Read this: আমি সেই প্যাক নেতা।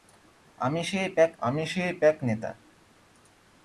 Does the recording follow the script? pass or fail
fail